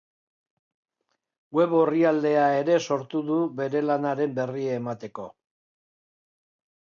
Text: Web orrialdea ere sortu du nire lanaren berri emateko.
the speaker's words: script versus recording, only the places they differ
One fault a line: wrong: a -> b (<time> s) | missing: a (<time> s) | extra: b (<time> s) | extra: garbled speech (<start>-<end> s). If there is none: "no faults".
wrong: nire -> bere (3.6 s)